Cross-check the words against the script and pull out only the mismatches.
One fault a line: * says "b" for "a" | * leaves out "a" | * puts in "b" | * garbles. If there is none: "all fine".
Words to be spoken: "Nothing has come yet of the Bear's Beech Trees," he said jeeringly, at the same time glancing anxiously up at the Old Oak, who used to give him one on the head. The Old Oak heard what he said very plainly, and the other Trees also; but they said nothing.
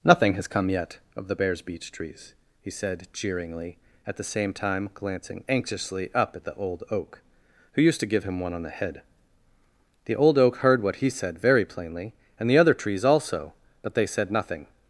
all fine